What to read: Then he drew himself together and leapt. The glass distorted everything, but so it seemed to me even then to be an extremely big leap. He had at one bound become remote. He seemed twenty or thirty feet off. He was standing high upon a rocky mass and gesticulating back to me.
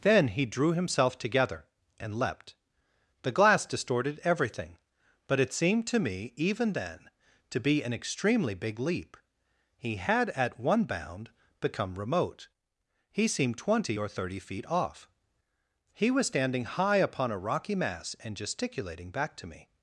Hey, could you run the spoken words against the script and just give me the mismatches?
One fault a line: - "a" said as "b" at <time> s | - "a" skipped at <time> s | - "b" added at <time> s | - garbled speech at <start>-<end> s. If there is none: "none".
- "so" skipped at 5.4 s